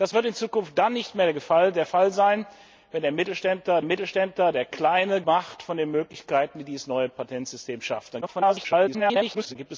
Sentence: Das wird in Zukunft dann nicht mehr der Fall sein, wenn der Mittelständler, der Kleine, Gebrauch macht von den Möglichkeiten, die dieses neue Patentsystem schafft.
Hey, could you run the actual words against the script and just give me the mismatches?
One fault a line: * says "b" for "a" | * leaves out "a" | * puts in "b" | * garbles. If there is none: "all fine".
* puts in "Mittelständler"
* leaves out "Gebrauch"
* garbles